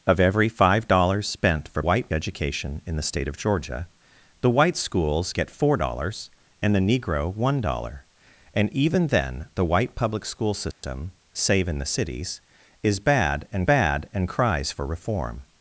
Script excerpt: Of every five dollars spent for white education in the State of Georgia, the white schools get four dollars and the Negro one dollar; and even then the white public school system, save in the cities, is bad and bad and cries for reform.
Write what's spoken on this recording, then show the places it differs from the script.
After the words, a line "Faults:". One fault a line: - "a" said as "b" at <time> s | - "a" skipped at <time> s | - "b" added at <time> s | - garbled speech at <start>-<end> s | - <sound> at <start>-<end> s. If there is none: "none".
Of every five dollars spent for white education in the State of Georgia, the white schools get four dollars and the Negro one dollar; and even then the white public school system, save in the cities, is bad and bad and cries for reform.
Faults:
- dropout at 10.7-10.8 s